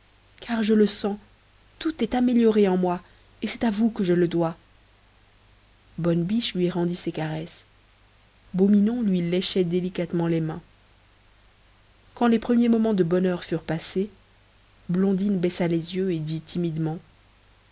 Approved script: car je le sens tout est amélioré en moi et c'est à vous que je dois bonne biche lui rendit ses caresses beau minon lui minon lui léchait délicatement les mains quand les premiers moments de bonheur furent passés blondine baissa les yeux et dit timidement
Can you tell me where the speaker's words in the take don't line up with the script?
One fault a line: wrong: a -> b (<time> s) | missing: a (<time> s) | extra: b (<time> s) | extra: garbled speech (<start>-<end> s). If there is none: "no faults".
extra: le (4.1 s)
missing: minon lui (9.2 s)